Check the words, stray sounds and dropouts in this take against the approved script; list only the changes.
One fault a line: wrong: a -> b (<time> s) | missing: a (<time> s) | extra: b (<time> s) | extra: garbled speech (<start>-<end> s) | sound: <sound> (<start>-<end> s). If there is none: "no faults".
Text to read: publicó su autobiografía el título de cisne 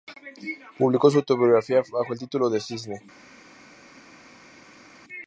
extra: bajo (1.9 s)